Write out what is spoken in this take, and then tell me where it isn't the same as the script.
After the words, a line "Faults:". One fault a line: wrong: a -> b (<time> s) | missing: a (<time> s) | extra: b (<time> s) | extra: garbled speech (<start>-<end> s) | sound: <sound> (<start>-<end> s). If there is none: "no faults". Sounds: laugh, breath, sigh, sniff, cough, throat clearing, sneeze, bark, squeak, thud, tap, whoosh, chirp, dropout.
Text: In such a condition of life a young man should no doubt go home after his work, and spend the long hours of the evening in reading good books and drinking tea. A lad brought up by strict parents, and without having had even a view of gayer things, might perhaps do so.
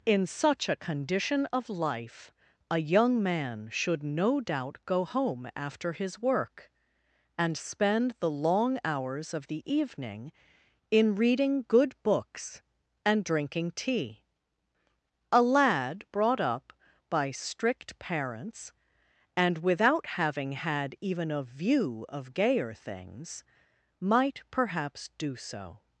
In such a condition of life a young man should no doubt go home after his work, and spend the long hours of the evening in reading good books and drinking tea. A lad brought up by strict parents, and without having had even a view of gayer things, might perhaps do so.
Faults:
no faults